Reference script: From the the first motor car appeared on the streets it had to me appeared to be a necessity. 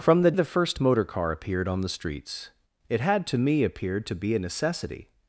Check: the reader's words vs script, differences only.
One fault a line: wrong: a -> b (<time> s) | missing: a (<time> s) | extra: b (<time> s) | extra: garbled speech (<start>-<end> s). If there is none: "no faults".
no faults